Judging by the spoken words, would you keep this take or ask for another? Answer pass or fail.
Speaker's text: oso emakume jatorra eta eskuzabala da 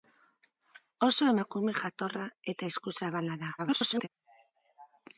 fail